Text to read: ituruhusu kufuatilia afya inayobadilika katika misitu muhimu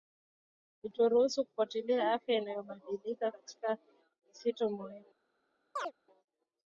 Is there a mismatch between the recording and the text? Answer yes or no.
no